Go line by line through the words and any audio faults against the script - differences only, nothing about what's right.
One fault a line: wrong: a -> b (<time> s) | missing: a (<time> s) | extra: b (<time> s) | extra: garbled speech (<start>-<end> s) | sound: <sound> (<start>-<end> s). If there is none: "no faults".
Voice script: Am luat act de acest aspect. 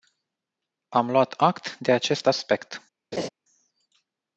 sound: laugh (3.1-3.3 s)